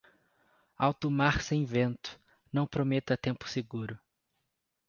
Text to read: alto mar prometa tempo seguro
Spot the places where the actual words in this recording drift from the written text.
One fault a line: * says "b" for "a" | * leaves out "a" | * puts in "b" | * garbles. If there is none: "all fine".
* puts in "sem vento não"